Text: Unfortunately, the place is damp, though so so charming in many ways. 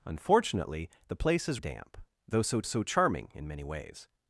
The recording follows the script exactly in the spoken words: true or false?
true